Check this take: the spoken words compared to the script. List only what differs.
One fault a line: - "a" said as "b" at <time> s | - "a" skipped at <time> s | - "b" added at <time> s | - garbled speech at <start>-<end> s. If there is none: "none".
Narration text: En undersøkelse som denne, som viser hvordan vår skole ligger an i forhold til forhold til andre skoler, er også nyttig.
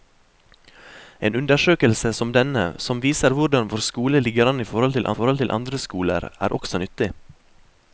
none